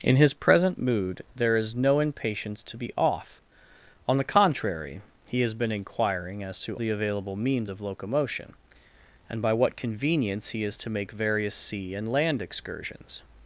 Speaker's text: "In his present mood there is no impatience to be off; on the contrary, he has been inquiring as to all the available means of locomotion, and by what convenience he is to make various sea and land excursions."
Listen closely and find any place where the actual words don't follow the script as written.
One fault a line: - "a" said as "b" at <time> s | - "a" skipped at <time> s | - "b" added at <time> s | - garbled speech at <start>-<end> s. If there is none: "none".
- "all" skipped at 6.8 s